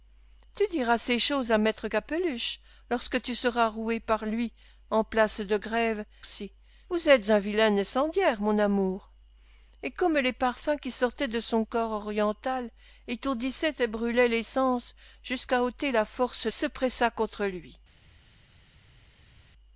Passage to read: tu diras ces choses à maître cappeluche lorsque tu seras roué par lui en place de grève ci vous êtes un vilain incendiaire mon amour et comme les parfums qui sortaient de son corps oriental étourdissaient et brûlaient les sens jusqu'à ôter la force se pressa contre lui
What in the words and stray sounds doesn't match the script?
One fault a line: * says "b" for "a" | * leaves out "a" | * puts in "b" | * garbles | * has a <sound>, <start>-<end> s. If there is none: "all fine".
all fine